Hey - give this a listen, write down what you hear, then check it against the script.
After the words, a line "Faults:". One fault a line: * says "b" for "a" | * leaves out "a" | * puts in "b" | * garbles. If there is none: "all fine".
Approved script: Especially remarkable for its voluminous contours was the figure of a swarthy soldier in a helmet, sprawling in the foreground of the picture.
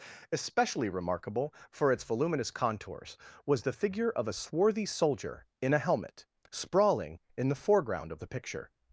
Especially remarkable for its voluminous contours was the figure of a swarthy soldier in a helmet, sprawling in the foreground of the picture.
Faults:
all fine